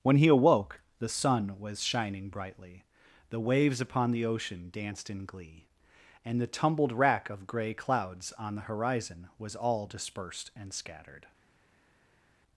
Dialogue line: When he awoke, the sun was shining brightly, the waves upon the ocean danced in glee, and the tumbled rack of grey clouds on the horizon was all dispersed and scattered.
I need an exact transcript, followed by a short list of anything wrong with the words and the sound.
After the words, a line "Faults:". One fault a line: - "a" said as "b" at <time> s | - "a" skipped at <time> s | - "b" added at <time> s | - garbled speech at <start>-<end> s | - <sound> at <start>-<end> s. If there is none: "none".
When he awoke, the sun was shining brightly, the waves upon the ocean danced in glee, and the tumbled rack of grey clouds on the horizon was all dispersed and scattered.
Faults:
none